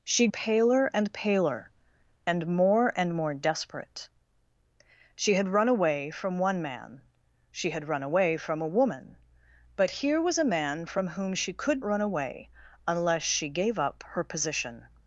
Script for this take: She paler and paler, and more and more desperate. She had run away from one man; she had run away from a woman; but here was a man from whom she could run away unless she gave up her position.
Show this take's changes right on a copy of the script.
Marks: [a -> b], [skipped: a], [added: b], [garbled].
She paler and paler, and more and more desperate. She had run away from one man; she had run away from a woman; but here was a man from whom she could run away unless she gave up her position.